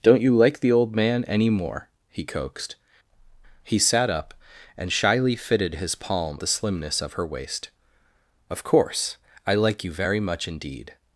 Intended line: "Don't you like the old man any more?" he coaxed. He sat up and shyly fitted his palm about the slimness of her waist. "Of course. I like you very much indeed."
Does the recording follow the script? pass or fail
fail